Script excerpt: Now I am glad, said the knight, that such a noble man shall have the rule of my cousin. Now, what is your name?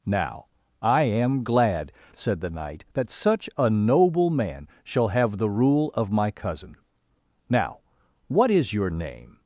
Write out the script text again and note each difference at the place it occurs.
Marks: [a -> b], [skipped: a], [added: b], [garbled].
Now I am glad, said the knight, that such a noble man shall have the rule of my cousin. Now, what is your name?